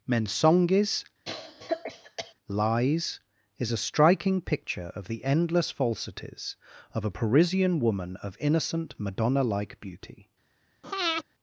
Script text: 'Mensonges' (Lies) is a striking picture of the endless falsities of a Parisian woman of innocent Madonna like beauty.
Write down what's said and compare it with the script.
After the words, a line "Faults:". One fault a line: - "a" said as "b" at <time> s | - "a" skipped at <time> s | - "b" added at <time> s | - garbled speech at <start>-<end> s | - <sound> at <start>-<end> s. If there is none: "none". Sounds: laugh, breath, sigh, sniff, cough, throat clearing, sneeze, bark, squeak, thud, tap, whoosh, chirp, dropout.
'Mensonges' (Lies) is a striking picture of the endless falsities of a Parisian woman of innocent Madonna like beauty.
Faults:
- cough at 1.3-2.3 s
- breath at 10.8-11.2 s